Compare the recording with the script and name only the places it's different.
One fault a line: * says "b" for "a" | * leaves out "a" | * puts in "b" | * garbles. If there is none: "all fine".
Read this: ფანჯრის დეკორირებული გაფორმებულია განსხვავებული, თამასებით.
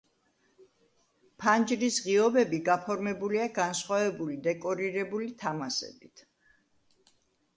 * says "ღიობები" for "დეკორირებული"
* puts in "დეკორირებული"